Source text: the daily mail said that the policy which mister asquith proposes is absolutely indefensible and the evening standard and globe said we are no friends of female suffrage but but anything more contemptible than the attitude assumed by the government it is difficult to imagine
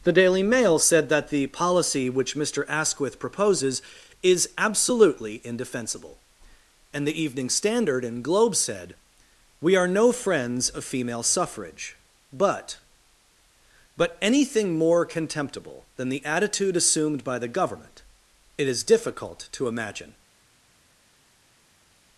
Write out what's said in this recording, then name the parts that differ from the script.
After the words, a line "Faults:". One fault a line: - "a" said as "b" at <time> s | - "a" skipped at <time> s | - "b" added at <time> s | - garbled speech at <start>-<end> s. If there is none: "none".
the daily mail said that the policy which mister asquith proposes is absolutely indefensible and the evening standard and globe said we are no friends of female suffrage but but anything more contemptible than the attitude assumed by the government it is difficult to imagine
Faults:
none